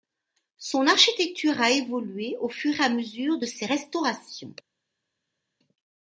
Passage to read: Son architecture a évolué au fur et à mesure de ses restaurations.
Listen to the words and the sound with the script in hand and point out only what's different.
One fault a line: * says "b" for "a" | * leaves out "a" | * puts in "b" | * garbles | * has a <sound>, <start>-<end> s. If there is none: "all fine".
all fine